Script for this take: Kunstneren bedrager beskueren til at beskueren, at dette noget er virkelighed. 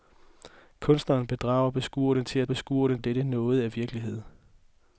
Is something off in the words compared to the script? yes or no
no